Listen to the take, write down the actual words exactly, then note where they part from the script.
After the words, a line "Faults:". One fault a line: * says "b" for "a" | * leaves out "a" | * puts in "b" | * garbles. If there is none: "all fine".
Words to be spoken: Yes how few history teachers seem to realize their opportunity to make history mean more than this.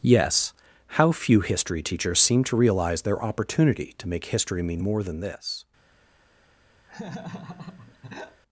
Yes how few history teachers seem to realize their opportunity to make history mean more than this.
Faults:
all fine